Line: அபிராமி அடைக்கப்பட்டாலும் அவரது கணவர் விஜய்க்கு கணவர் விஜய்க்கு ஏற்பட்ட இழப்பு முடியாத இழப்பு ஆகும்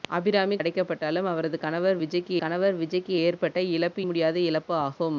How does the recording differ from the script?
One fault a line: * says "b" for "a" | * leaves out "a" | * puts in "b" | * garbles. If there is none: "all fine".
all fine